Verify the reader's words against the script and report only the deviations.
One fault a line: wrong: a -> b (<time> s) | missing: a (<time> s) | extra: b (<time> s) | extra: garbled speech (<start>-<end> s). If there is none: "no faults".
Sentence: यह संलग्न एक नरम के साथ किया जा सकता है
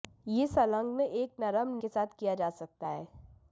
no faults